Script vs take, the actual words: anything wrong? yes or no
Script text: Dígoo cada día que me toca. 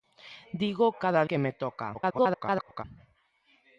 yes